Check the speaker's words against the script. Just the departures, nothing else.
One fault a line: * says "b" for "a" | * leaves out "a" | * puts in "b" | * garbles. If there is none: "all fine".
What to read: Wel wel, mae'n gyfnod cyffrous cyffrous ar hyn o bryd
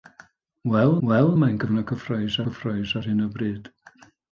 all fine